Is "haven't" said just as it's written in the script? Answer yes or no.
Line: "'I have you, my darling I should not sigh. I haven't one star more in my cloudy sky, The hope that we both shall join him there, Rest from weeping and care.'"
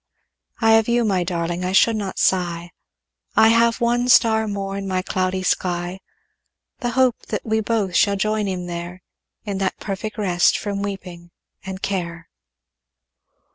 no